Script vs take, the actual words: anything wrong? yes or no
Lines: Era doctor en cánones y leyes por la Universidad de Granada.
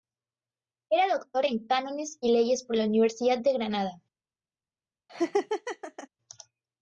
no